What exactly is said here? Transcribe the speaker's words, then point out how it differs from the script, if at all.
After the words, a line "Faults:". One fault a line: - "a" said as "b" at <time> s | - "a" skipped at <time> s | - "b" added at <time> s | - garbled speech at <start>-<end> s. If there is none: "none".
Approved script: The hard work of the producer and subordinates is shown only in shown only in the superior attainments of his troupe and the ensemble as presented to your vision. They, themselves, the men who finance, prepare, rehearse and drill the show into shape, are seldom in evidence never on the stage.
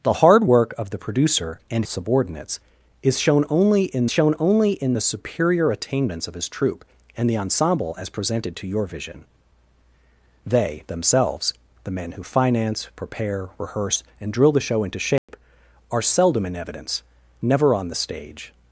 The hard work of the producer and subordinates is shown only in shown only in the superior attainments of his troupe and the ensemble as presented to your vision. They, themselves, the men who finance, prepare, rehearse and drill the show into shape, are seldom in evidence never on the stage.
Faults:
none